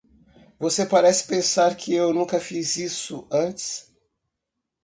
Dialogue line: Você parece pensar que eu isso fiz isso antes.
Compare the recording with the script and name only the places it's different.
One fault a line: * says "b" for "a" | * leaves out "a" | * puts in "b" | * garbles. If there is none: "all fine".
* says "nunca" for "isso"